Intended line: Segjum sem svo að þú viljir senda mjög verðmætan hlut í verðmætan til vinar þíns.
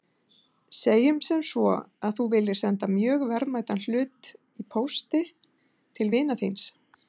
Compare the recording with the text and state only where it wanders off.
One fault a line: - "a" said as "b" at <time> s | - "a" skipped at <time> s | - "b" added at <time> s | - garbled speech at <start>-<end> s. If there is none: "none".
- "verðmætan" said as "pósti" at 4.8 s